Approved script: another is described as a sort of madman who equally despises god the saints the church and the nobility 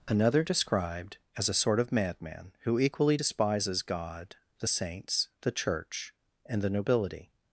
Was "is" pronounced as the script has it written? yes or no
no